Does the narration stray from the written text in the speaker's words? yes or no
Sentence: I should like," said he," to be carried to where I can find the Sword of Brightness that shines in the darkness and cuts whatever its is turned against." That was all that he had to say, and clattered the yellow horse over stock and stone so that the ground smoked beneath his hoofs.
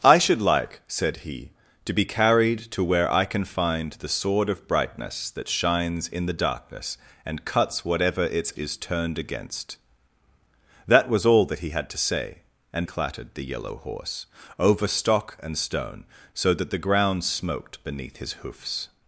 no